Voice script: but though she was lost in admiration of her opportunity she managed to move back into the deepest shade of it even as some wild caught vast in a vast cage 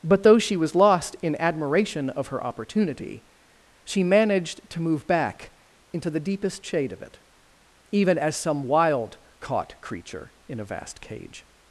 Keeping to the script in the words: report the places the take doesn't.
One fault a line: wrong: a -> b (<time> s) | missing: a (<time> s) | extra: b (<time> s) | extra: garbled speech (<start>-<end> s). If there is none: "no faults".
wrong: vast -> creature (9.8 s)